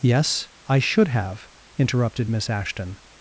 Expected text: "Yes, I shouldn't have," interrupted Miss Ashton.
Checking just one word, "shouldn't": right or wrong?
wrong